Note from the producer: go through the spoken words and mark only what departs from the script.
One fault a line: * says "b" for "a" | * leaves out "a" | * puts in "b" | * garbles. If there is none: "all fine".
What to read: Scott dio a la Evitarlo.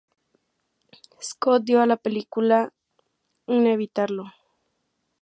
* puts in "película un"